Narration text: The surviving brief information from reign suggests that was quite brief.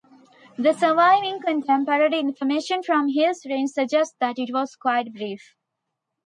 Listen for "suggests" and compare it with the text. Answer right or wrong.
right